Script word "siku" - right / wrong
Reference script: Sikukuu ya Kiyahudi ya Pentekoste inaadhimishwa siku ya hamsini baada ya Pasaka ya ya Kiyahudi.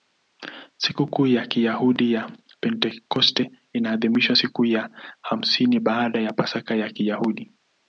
right